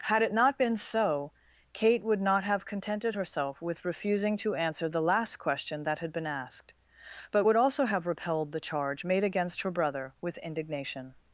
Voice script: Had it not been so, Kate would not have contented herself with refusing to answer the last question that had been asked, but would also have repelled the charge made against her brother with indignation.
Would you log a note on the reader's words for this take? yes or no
no